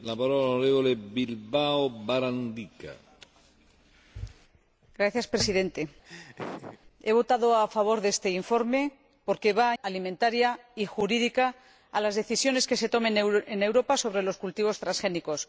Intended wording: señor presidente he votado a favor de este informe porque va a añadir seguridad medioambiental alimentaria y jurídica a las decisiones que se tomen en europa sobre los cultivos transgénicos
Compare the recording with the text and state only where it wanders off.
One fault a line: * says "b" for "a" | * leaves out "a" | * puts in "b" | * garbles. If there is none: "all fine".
* leaves out "añadir seguridad medioambiental"